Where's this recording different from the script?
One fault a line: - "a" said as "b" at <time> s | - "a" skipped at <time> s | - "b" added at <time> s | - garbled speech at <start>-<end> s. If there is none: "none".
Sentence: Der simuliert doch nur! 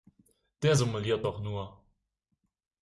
none